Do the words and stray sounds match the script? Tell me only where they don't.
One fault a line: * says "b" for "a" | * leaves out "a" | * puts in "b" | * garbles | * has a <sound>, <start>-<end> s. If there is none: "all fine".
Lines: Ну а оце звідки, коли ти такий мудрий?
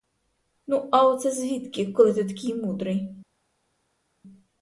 all fine